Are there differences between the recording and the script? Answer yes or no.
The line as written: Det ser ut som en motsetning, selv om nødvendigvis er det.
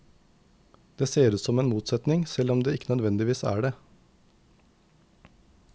yes